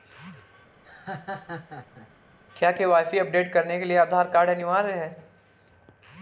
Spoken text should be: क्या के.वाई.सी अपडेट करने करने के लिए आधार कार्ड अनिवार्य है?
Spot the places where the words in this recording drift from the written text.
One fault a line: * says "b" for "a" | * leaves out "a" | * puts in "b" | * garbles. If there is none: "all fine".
* leaves out "करने"